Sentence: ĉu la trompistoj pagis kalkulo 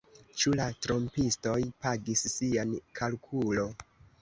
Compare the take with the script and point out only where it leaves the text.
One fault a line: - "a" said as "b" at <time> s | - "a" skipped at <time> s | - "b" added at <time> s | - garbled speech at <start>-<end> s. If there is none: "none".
- "sian" added at 2.4 s